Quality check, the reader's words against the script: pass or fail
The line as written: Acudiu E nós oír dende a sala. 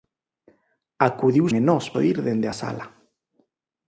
pass